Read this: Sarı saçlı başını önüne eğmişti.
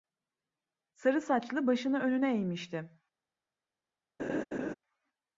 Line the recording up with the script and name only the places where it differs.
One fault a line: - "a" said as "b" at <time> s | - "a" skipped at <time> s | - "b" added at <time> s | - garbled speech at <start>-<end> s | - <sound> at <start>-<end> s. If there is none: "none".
- laugh at 4.2-4.7 s